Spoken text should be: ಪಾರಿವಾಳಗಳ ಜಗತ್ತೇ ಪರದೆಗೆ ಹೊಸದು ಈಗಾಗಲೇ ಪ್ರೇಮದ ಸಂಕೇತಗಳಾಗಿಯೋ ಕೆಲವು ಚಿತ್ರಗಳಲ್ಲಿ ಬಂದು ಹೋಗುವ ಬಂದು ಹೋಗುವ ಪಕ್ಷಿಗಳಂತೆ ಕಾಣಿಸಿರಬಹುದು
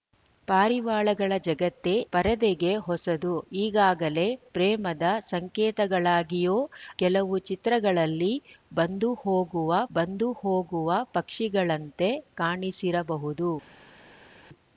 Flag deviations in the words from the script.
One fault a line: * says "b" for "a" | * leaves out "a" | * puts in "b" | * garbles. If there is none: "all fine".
all fine